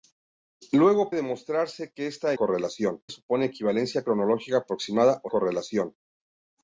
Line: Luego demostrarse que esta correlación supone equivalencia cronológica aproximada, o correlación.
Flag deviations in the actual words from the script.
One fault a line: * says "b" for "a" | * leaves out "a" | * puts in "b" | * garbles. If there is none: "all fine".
all fine